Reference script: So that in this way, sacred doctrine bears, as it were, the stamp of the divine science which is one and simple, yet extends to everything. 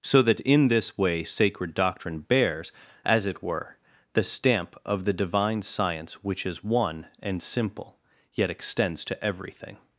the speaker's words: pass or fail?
pass